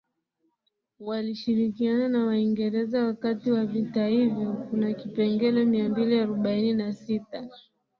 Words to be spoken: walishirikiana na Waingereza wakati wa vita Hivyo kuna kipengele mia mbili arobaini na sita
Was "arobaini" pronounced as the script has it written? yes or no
yes